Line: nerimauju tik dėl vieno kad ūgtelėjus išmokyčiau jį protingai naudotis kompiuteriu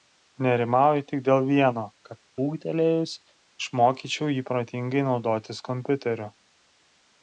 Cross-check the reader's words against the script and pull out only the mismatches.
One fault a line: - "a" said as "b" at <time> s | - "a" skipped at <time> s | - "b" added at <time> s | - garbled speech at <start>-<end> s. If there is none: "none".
none